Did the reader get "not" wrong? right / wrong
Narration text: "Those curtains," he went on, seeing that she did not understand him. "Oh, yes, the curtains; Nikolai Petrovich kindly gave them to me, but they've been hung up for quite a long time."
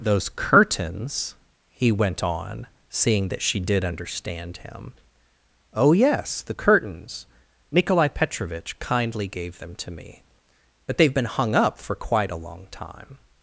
wrong